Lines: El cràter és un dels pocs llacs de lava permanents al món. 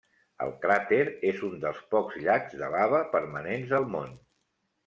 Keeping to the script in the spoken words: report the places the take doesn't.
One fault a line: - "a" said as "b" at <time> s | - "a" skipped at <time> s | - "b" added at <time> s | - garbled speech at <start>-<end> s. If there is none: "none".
none